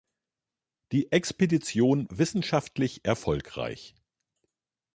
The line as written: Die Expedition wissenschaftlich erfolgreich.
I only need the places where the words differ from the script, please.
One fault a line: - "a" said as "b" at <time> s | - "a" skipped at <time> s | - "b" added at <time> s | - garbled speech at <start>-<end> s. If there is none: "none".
none